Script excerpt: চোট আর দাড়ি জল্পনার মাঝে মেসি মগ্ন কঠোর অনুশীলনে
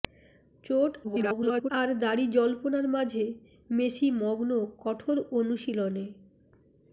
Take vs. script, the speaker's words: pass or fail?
fail